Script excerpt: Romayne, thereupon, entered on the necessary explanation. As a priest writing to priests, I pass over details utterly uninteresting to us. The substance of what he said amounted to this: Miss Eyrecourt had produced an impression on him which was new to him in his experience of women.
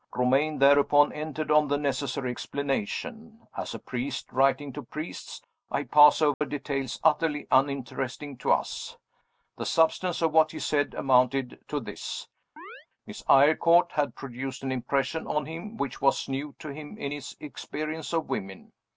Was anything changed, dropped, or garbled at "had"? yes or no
no